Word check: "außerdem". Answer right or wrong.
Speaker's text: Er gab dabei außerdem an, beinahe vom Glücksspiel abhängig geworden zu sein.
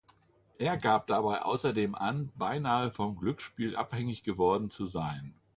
right